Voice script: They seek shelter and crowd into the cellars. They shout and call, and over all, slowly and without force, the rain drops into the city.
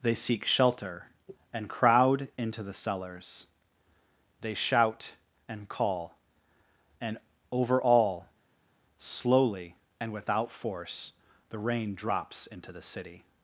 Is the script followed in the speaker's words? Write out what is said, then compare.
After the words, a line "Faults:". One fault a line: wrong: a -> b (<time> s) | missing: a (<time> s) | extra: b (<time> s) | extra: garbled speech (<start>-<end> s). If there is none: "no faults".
They seek shelter and crowd into the cellars. They shout and call, and over all, slowly and without force, the rain drops into the city.
Faults:
no faults